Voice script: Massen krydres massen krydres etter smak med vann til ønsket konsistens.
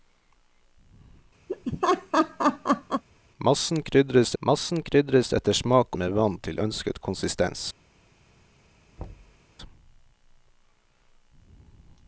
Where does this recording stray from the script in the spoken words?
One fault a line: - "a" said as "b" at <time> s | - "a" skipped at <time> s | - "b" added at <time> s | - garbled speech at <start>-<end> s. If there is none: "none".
none